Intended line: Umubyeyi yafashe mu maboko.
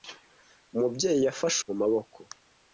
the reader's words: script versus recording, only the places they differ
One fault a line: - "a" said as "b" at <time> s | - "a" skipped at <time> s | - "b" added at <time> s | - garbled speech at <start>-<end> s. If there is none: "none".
none